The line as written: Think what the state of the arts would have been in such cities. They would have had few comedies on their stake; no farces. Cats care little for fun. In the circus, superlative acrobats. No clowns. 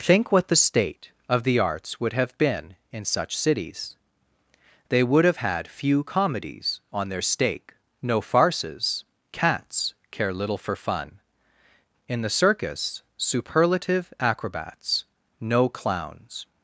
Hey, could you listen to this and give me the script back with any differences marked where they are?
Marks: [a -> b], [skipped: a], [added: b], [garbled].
Think what the state of the arts would have been in such cities. They would have had few comedies on their stake; no farces. Cats care little for fun. In the circus, superlative acrobats. No clowns.